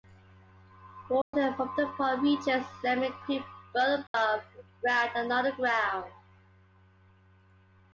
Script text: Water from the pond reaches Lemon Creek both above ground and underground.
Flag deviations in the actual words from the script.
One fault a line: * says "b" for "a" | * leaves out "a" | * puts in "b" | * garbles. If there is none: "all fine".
all fine